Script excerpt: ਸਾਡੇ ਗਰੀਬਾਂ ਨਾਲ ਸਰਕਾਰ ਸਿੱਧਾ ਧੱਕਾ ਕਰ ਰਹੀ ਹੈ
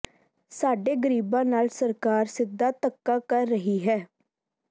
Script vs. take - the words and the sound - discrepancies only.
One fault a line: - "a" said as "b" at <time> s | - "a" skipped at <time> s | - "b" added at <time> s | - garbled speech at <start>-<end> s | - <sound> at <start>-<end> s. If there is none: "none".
none